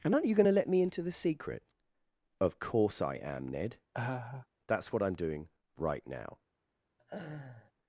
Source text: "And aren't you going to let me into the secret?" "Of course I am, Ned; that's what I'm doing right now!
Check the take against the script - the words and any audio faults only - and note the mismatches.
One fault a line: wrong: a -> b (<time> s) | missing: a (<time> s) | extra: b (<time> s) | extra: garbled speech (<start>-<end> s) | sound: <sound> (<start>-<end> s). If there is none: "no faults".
sound: laugh (3.9-4.5 s)
sound: laugh (7.0-7.7 s)